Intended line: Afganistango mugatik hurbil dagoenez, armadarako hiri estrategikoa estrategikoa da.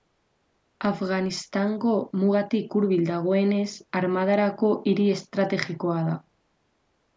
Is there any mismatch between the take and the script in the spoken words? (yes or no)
yes